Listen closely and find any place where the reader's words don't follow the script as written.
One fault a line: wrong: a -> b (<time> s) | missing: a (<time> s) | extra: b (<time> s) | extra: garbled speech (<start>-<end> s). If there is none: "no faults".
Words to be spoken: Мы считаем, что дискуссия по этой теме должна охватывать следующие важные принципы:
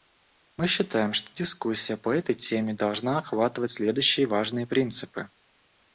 no faults